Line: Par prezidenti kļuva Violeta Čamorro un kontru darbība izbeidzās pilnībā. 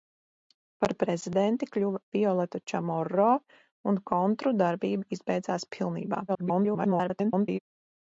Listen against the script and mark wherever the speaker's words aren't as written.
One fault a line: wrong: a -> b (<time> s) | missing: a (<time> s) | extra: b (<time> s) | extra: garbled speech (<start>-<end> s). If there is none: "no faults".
extra: garbled speech (6.3-7.6 s)